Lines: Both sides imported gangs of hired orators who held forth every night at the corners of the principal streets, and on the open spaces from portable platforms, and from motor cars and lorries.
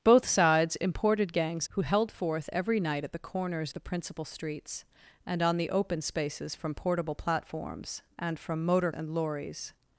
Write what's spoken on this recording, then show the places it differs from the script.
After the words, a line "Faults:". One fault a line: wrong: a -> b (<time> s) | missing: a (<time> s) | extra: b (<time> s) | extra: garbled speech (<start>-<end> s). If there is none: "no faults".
Both sides imported gangs who held forth every night at the corners the principal streets, and on the open spaces from portable platforms, and from motor and lorries.
Faults:
missing: of hired orators (1.7 s)
missing: of (3.7 s)
missing: cars (8.9 s)